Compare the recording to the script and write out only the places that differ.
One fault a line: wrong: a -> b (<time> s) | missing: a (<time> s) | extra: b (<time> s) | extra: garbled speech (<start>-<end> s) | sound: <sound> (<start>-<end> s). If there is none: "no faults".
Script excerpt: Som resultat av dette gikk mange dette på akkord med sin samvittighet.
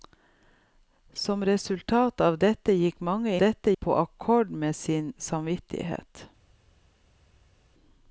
no faults